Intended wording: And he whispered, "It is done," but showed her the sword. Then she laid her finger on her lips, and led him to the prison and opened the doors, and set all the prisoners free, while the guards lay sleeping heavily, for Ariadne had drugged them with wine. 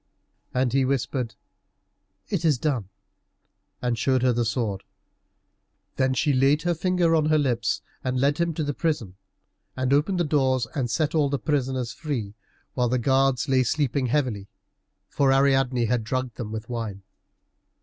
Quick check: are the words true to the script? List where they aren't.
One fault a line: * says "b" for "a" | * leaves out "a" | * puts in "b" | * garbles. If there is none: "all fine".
* says "and" for "but"